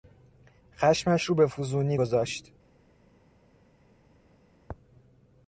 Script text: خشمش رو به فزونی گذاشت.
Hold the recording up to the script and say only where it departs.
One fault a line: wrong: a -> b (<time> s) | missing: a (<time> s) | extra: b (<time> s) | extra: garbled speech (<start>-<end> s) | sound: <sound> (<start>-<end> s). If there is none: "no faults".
no faults